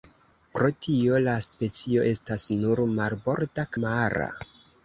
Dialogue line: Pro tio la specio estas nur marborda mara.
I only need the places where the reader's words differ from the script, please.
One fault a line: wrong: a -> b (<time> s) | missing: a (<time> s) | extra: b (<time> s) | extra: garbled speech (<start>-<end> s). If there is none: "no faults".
no faults